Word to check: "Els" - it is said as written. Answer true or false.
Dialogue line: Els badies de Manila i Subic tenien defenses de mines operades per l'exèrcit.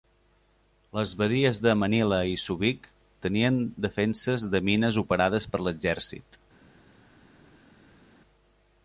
false